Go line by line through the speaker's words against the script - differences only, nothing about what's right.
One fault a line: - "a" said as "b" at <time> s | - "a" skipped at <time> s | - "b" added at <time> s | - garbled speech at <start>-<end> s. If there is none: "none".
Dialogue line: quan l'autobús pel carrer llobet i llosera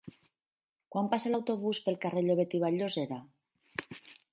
- "passa" added at 1.1 s
- "vall" added at 2.7 s